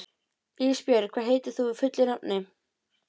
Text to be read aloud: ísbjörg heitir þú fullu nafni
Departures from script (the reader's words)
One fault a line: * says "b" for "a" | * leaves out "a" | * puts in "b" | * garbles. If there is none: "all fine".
* puts in "hvað"